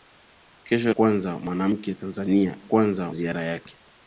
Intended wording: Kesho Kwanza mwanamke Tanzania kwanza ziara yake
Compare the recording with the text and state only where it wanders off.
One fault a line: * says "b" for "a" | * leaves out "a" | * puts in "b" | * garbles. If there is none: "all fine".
all fine